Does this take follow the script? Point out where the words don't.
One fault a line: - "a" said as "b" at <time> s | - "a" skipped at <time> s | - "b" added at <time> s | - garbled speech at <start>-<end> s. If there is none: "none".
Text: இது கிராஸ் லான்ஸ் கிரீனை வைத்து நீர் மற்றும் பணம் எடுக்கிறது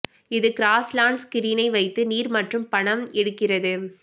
none